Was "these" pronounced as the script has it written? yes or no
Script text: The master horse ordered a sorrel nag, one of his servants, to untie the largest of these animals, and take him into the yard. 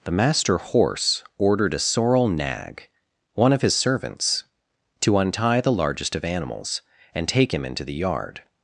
no